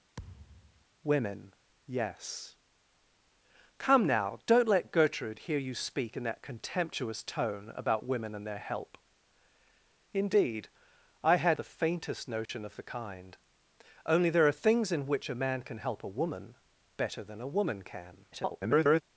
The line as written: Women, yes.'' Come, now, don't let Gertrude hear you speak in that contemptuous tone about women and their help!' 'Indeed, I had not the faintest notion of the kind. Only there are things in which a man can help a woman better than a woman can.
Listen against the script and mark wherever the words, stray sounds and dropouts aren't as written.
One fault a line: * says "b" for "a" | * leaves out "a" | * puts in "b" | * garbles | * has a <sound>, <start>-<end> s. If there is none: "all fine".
* has a thud, 0.2-0.8 s
* leaves out "not"
* has a dropout, 12.5-12.5 s
* garbles